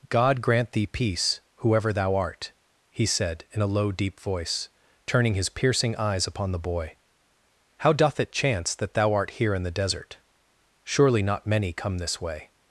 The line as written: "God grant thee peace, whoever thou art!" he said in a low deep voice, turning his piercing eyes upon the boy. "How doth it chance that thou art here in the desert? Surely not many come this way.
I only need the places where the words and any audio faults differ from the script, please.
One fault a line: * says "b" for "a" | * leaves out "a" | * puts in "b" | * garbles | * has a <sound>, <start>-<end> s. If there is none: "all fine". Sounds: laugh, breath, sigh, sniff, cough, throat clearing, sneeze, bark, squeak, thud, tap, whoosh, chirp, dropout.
all fine